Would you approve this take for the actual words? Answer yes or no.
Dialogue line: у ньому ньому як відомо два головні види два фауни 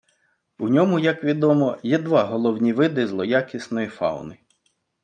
no